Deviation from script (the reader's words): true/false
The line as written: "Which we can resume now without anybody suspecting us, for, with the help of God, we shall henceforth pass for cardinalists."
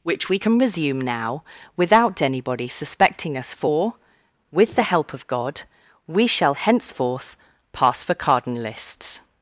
false